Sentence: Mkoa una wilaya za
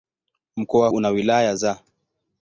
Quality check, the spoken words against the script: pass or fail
pass